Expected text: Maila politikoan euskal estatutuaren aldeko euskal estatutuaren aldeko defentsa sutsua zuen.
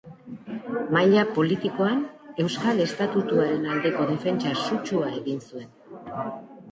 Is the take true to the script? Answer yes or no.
no